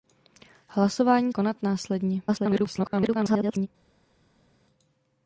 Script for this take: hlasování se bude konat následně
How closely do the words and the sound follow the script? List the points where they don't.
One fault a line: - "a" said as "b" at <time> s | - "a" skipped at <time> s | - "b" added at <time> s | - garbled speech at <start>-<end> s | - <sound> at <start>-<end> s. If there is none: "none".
- "se bude" skipped at 1.3 s
- garbled speech at 2.3-3.7 s